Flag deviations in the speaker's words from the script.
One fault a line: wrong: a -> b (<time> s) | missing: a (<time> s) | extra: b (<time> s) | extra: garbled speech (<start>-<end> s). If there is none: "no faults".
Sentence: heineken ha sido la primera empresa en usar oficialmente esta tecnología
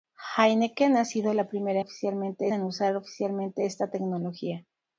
wrong: empresa -> oficialmente (1.8 s)